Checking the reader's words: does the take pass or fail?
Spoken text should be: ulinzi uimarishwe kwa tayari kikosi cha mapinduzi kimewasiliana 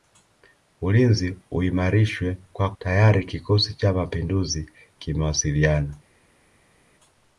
pass